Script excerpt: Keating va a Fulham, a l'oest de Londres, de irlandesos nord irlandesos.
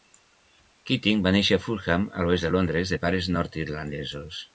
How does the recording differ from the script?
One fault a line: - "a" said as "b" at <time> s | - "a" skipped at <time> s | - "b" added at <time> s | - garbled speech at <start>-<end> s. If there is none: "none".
- "néixer" added at 1.4 s
- "irlandesos" said as "pares" at 3.1 s